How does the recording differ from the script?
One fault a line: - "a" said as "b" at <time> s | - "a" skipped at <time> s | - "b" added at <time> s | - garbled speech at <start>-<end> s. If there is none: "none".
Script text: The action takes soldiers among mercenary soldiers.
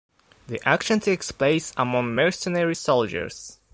- "soldiers" said as "place" at 1.3 s